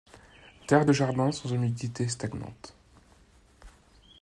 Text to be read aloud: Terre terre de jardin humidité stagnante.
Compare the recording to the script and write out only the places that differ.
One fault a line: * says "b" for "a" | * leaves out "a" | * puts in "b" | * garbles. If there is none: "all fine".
* leaves out "terre"
* puts in "sans"